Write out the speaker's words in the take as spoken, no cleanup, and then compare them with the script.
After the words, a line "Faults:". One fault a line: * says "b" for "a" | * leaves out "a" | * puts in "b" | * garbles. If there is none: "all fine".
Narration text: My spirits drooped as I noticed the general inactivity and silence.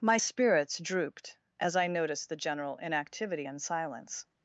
My spirits drooped as I noticed the general inactivity and silence.
Faults:
all fine